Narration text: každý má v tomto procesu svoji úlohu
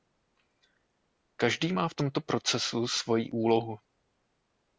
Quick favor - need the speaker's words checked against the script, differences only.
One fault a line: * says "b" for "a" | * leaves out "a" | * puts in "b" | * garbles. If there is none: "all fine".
all fine